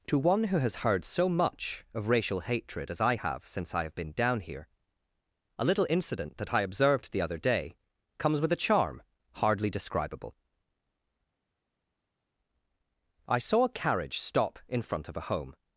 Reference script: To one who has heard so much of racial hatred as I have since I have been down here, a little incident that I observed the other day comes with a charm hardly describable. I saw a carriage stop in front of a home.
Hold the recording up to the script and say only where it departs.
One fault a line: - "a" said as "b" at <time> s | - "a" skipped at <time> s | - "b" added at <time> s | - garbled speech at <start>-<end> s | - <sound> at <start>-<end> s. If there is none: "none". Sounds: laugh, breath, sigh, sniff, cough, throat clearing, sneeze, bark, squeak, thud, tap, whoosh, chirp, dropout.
none